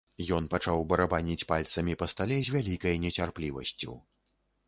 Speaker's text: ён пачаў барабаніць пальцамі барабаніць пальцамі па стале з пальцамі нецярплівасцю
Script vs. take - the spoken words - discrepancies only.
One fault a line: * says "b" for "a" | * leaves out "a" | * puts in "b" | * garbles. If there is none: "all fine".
* leaves out "барабаніць пальцамі"
* says "вялікай" for "пальцамі"